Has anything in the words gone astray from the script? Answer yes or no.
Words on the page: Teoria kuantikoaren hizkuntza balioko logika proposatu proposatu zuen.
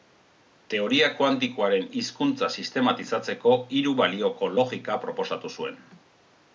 yes